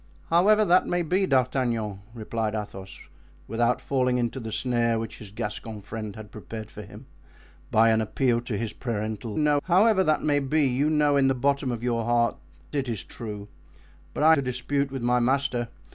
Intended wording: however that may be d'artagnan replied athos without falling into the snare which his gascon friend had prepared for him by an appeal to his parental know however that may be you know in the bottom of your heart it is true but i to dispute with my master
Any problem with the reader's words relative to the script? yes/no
no